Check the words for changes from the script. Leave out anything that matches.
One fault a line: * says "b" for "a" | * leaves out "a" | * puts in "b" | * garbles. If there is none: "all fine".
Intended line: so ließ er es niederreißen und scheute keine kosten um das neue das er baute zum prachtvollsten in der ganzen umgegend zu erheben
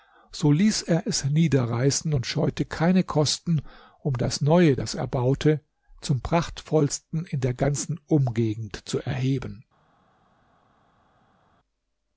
all fine